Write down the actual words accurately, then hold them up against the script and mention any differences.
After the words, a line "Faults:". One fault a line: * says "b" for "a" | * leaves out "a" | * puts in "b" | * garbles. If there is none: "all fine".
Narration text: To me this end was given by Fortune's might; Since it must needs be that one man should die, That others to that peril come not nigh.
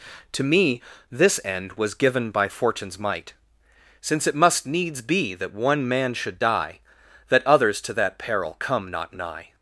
To me this end was given by Fortune's might; Since it must needs be that one man should die, That others to that peril come not nigh.
Faults:
all fine